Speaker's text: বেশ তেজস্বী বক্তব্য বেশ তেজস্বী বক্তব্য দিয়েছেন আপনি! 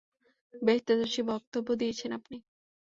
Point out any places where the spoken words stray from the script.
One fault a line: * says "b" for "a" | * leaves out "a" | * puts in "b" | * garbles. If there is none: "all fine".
* leaves out "বেশ তেজস্বী বক্তব্য"